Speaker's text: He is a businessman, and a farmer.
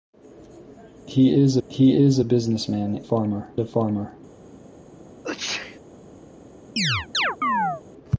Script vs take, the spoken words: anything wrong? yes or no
yes